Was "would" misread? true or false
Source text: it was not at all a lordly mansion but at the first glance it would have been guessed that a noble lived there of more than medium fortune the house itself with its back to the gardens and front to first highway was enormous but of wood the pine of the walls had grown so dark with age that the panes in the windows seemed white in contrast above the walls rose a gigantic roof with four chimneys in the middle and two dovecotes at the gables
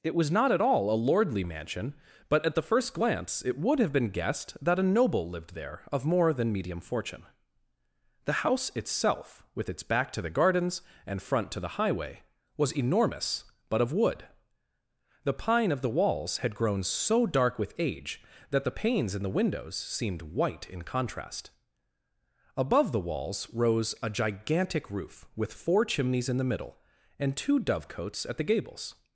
false